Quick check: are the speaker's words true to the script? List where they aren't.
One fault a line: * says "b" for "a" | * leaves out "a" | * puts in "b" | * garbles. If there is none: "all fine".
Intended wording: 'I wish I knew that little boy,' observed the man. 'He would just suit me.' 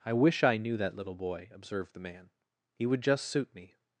all fine